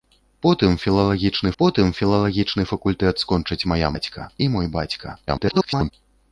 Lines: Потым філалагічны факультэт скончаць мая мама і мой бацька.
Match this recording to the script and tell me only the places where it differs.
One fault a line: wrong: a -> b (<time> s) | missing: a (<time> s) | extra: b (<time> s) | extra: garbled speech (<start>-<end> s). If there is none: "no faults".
extra: потым філалагічны (1.6 s)
wrong: мама -> бацька (3.9 s)
extra: garbled speech (5.3-5.9 s)